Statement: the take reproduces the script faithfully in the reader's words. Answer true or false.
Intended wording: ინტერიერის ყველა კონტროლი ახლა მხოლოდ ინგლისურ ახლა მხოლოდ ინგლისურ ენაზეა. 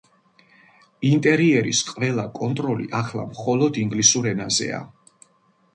false